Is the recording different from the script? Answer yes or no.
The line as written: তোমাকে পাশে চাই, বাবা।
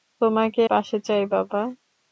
no